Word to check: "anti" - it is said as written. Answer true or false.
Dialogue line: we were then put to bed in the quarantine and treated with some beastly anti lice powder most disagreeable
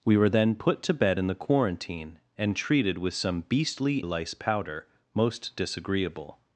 false